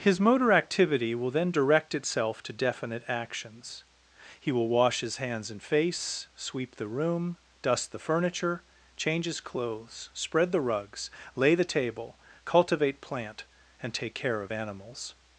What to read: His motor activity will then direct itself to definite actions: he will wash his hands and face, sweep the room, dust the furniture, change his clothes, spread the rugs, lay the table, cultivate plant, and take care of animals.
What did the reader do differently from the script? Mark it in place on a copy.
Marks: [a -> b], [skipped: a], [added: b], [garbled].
His motor activity will then direct itself to definite actions: he will wash his hands and face, sweep the room, dust the furniture, change his clothes, spread the rugs, lay the table, cultivate plant, and take care of animals.